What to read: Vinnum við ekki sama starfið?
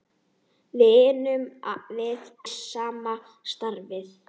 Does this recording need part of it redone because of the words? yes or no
yes